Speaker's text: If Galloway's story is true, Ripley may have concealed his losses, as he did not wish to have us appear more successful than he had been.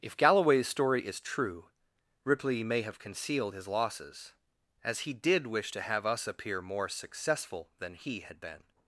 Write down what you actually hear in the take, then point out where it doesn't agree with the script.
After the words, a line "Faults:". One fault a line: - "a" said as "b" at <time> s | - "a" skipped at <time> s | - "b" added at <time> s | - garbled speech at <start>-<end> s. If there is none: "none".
If Galloway's story is true, Ripley may have concealed his losses, as he did wish to have us appear more successful than he had been.
Faults:
- "not" skipped at 5.5 s